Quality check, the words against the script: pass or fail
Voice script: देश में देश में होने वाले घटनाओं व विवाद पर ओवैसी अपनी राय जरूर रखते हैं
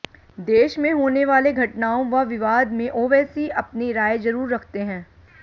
fail